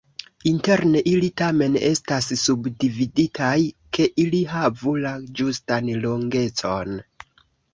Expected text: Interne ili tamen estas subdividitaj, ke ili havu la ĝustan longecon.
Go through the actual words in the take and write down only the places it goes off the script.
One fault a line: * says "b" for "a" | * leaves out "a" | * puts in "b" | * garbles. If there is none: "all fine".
all fine